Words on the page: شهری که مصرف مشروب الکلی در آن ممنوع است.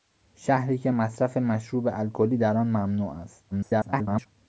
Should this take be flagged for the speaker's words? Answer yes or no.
yes